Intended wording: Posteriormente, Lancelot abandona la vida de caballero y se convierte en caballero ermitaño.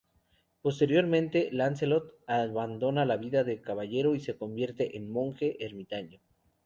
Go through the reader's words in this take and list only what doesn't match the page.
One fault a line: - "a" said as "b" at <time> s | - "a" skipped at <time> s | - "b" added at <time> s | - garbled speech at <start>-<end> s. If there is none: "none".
- "caballero" said as "monje" at 5.1 s